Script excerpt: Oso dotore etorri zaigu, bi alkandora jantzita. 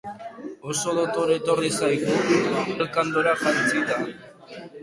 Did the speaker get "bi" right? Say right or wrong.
wrong